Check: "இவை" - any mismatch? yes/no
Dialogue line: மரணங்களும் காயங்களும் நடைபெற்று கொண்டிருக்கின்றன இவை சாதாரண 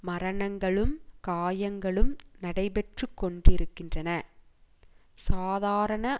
yes